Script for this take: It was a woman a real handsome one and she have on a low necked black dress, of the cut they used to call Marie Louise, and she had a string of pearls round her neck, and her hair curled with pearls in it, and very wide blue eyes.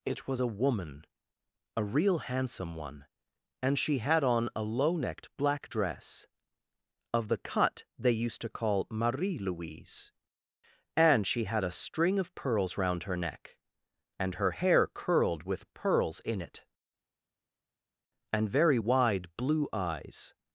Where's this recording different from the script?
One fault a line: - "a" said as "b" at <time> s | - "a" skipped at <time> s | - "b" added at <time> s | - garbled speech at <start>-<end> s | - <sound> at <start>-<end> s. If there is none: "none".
- "have" said as "had" at 4.0 s